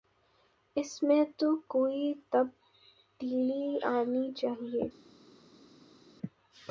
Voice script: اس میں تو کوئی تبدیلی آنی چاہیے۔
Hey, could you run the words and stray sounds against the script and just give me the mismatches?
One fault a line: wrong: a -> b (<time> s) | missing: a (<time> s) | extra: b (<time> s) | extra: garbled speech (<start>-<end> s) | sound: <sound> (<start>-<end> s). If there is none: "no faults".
no faults